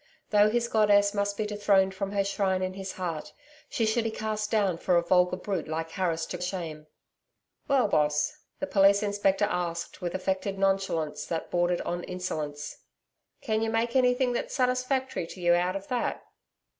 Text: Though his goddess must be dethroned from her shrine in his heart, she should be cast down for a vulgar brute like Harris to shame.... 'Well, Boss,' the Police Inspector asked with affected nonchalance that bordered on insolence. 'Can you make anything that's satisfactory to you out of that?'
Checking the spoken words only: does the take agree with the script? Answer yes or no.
yes